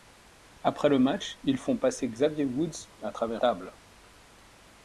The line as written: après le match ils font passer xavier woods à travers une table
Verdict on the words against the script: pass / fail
fail